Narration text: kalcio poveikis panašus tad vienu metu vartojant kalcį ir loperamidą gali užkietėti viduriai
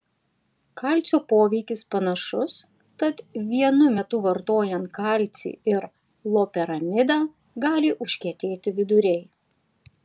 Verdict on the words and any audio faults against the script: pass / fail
pass